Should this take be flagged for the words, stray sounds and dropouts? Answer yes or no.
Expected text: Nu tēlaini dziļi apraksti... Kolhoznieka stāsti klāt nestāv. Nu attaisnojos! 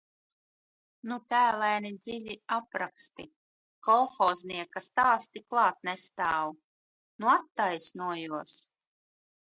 no